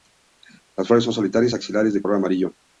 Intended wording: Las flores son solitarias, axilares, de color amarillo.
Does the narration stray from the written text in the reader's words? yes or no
no